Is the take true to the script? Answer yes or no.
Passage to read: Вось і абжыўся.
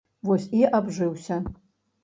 yes